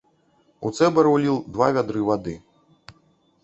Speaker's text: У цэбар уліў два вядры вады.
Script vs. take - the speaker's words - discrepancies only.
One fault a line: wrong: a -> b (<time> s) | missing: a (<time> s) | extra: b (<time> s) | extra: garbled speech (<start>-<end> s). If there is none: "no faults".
no faults